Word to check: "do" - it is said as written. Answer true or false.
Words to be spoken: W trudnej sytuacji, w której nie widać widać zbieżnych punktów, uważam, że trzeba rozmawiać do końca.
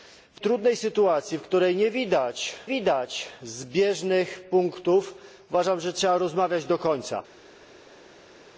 true